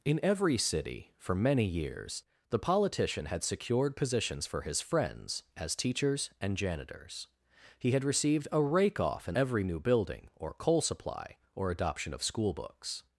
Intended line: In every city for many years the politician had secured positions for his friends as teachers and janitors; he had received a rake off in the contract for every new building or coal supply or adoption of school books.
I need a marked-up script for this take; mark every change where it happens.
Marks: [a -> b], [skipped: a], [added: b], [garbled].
In every city for many years the politician had secured positions for his friends as teachers and janitors; he had received a rake off in [skipped: the contract for] every new building or coal supply or adoption of school books.